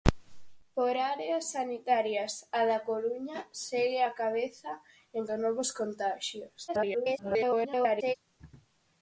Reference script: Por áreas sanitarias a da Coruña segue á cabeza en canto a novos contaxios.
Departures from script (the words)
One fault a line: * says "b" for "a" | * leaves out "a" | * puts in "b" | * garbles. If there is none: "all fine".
* leaves out "canto"
* garbles